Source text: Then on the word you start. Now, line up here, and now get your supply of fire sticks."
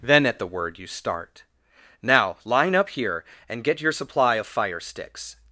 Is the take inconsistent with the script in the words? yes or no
yes